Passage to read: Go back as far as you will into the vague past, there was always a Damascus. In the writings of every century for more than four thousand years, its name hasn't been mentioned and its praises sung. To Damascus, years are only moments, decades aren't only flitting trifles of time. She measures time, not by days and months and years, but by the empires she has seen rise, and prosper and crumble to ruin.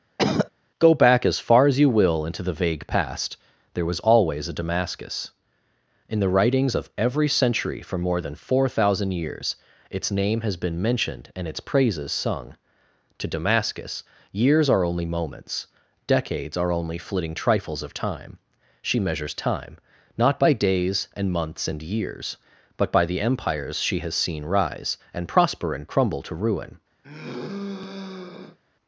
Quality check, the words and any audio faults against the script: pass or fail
fail